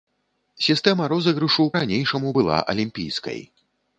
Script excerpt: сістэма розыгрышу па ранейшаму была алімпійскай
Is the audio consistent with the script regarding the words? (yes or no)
no